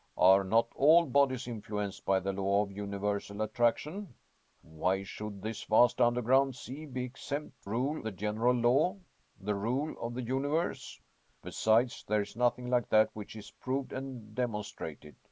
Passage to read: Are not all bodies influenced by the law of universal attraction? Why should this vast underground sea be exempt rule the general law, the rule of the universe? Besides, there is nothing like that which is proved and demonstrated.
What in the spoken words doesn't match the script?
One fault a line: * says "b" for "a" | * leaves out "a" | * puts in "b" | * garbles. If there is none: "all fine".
all fine